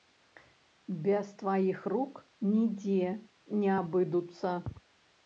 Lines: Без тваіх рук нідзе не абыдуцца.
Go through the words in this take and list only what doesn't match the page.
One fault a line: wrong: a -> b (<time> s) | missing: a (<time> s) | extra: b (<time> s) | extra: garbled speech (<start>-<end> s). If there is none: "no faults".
no faults